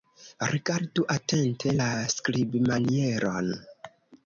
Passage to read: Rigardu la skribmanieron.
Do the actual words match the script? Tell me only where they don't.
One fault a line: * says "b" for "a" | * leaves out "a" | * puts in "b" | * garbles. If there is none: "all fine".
* puts in "atente"